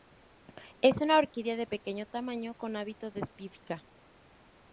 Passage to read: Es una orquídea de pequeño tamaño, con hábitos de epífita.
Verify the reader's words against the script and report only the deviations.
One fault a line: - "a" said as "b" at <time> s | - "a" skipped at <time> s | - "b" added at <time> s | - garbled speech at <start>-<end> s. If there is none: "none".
none